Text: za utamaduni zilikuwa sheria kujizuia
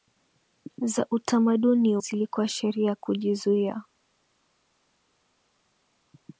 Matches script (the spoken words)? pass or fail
pass